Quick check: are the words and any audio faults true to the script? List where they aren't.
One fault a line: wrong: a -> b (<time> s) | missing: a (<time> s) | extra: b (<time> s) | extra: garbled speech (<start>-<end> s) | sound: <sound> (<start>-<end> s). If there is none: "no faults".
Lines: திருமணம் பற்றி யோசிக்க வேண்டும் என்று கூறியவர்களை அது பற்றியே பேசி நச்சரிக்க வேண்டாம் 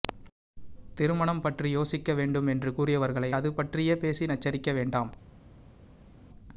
no faults